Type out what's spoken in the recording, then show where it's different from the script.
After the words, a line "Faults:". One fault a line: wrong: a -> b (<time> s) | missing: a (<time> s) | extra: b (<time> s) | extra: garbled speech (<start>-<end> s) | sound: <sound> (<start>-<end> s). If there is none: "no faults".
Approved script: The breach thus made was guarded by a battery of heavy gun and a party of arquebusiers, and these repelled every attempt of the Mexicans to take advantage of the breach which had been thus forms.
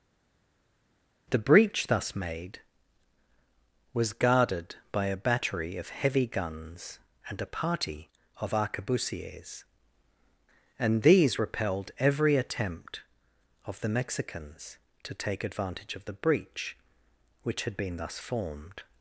The breach thus made was guarded by a battery of heavy guns and a party of arquebusiers, and these repelled every attempt of the Mexicans to take advantage of the breach which had been thus formed.
Faults:
wrong: gun -> guns (6.2 s)
wrong: forms -> formed (18.2 s)